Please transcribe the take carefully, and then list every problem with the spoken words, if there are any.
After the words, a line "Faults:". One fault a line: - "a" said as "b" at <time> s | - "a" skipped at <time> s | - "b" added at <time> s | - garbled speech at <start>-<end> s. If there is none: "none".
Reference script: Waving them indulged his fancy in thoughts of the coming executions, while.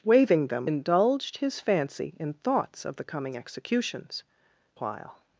Waving them indulged his fancy in thoughts of the coming executions, while.
Faults:
none